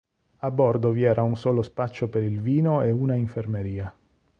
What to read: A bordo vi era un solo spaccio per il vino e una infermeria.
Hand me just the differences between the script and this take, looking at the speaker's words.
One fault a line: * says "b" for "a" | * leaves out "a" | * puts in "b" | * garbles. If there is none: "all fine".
all fine